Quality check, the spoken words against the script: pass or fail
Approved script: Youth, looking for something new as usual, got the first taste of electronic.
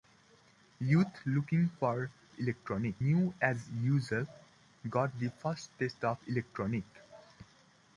fail